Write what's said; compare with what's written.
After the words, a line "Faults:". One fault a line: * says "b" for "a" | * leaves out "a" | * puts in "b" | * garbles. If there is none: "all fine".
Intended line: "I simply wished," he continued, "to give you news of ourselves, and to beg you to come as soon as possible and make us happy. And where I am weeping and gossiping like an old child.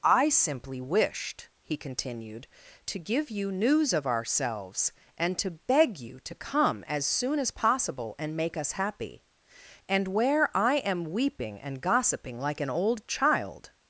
"I simply wished," he continued, "to give you news of ourselves, and to beg you to come as soon as possible and make us happy. And where I am weeping and gossiping like an old child.
Faults:
all fine